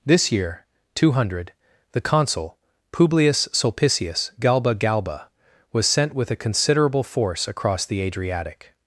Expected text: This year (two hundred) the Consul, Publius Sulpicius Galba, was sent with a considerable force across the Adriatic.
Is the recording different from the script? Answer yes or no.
yes